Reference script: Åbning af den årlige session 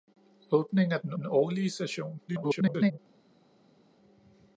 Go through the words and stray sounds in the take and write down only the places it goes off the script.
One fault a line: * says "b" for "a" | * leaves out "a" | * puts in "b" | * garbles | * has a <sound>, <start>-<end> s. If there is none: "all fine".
* puts in "den"
* garbles